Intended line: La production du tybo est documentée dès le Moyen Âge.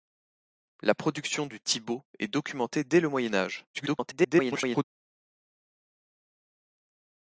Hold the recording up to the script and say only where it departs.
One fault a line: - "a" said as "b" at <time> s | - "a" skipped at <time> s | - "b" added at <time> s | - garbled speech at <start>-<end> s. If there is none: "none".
- garbled speech at 3.7-4.8 s